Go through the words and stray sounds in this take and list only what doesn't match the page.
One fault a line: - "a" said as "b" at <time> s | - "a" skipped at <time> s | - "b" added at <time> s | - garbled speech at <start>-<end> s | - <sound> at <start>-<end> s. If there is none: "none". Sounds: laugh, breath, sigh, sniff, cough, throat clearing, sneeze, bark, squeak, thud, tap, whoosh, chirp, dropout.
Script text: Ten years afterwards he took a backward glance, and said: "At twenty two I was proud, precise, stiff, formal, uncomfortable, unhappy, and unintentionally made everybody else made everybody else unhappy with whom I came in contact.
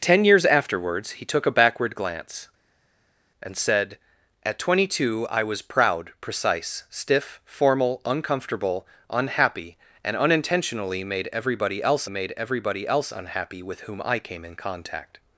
none